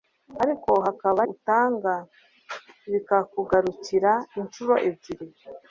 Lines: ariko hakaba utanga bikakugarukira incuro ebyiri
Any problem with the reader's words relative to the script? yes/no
no